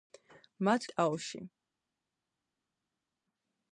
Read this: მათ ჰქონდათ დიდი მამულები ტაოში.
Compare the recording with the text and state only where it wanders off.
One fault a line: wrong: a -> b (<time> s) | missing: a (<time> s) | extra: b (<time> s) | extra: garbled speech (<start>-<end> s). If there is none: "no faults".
missing: ჰქონდათ დიდი მამულები (0.9 s)